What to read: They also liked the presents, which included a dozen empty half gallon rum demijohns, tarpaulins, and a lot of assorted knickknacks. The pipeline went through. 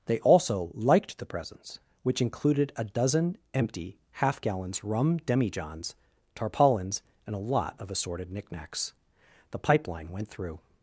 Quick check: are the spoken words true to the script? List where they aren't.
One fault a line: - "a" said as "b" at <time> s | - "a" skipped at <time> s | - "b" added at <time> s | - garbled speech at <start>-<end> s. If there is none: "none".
- "gallon" said as "gallons" at 4.4 s